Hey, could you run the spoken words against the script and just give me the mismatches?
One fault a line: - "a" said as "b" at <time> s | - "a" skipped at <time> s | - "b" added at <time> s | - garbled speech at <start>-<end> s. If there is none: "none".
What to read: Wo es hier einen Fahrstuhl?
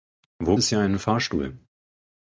none